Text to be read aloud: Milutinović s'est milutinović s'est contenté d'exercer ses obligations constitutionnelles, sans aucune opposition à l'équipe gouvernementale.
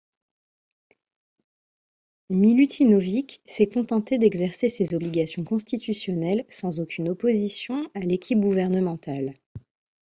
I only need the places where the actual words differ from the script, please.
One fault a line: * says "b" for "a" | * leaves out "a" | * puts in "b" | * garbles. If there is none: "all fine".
* leaves out "milutinović s'est"